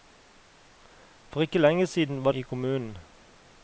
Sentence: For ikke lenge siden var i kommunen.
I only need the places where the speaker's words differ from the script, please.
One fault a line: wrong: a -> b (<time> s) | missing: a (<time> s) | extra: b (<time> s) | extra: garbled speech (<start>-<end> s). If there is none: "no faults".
no faults